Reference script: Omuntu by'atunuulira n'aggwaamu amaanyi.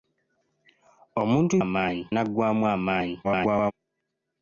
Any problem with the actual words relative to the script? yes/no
yes